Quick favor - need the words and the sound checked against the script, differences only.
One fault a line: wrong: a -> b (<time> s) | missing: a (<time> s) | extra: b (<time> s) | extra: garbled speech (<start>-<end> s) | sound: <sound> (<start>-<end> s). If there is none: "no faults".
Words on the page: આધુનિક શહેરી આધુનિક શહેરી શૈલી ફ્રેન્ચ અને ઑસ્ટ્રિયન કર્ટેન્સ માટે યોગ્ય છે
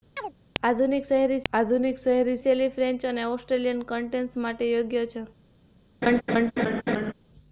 sound: chirp (0.2-0.3 s)
sound: laugh (6.0-7.1 s)